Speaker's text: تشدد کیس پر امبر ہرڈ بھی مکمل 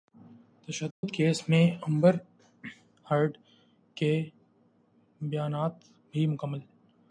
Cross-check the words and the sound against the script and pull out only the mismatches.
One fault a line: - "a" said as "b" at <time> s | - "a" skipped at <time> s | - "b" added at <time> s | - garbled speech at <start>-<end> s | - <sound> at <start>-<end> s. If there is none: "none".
- dropout at 0.9-1.0 s
- "پر" said as "میں" at 1.5 s
- "کے بیانات" added at 4.0 s